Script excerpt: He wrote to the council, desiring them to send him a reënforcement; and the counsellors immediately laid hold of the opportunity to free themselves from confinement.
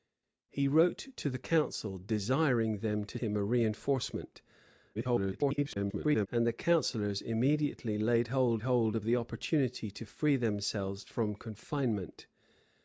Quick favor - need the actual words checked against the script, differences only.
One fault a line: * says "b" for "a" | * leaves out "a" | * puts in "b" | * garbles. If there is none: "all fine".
* leaves out "send"
* garbles
* puts in "hold"